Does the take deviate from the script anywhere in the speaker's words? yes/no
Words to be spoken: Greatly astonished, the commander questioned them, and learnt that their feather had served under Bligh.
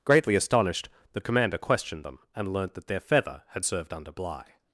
no